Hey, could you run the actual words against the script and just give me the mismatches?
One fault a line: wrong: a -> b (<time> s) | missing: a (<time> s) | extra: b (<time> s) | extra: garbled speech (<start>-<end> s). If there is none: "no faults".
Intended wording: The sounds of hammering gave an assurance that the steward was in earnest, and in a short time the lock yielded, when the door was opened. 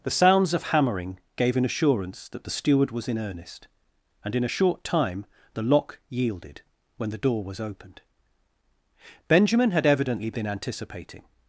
extra: Benjamin had evidently been anticipating (9.3 s)